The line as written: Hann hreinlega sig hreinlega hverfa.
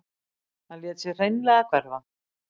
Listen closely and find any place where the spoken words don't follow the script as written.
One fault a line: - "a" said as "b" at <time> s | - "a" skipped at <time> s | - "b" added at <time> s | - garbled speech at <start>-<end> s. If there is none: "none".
- "hreinlega" said as "lét" at 0.8 s